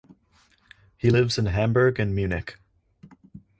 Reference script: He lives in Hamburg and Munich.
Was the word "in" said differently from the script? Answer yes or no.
no